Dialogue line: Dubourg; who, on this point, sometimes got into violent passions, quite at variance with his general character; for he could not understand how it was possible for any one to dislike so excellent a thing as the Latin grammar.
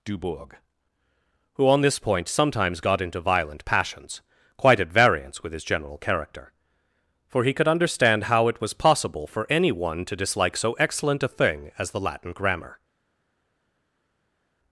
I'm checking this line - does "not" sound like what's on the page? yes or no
no